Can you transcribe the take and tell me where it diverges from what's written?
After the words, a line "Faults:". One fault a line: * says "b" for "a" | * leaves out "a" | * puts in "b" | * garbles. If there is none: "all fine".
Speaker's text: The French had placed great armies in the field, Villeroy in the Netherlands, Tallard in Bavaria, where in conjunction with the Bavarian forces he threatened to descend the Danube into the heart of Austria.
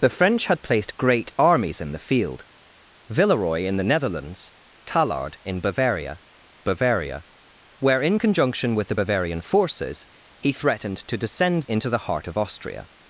The French had placed great armies in the field, Villeroy in the Netherlands, Tallard in Bavaria Bavaria, where in conjunction with the Bavarian forces he threatened to descend into the heart of Austria.
Faults:
* puts in "Bavaria"
* leaves out "the Danube"